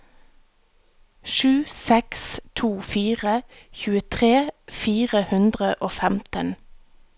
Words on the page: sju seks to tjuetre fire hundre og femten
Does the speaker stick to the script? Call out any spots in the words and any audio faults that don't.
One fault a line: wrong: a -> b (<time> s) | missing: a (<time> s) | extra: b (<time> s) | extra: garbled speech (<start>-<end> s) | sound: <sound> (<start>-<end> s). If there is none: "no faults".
extra: fire (2.9 s)